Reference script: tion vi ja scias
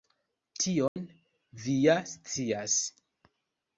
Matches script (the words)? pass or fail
pass